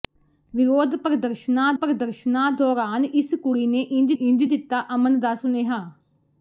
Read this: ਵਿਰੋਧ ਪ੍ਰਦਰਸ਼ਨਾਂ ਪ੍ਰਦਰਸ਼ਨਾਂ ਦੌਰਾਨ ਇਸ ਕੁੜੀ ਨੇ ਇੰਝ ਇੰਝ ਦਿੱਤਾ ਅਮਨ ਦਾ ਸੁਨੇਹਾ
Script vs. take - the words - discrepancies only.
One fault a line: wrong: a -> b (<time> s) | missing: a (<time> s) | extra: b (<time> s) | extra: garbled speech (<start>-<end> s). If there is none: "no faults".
no faults